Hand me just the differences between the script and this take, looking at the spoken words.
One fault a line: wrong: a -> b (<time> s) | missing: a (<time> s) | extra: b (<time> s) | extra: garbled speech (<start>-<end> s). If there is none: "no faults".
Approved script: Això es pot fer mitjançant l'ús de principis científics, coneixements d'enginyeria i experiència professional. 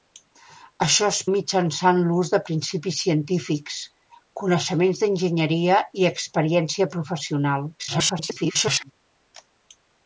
missing: pot fer (1.2 s)
extra: garbled speech (7.8-8.9 s)